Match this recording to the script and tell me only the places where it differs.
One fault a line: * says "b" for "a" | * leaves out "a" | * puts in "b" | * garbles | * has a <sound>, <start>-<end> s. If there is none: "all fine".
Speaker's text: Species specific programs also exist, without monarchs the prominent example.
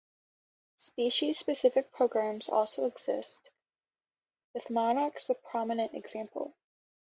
* says "with" for "without"